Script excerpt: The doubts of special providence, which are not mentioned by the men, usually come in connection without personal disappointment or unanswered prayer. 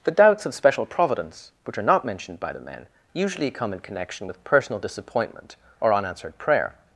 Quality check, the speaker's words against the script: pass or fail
fail